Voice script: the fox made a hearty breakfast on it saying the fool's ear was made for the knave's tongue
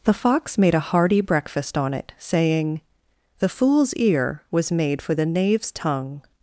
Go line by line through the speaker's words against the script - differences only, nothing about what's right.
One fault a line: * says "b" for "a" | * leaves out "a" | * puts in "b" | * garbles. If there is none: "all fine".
all fine